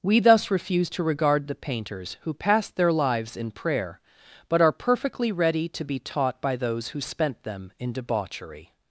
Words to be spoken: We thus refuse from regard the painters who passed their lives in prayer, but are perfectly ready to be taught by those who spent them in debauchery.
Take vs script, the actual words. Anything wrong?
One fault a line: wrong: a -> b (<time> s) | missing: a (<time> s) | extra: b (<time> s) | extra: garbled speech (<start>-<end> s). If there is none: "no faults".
wrong: from -> to (0.9 s)